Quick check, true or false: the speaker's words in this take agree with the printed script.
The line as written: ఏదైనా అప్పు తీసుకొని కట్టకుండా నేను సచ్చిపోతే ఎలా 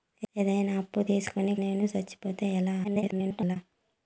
false